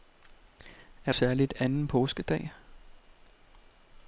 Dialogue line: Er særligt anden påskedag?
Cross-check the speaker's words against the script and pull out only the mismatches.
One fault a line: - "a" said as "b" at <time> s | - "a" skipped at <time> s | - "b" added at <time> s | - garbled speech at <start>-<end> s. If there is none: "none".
none